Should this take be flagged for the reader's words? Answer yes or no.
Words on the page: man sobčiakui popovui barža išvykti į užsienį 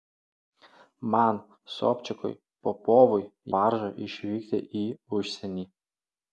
no